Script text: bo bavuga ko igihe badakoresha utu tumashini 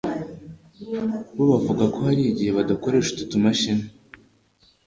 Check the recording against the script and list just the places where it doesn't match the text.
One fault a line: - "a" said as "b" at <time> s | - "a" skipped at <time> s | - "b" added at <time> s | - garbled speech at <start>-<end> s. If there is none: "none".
- "hari" added at 2.1 s